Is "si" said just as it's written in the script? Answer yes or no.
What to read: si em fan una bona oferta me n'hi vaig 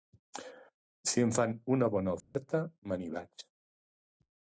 yes